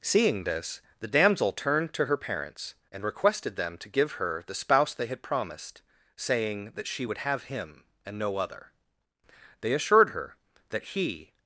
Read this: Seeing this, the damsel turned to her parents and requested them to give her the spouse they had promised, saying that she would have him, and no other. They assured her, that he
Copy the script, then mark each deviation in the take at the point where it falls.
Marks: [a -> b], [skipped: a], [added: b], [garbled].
Seeing this, the damsel turned to her parents and requested them to give her the spouse they had promised, saying that she would have him, and no other. They assured her, that he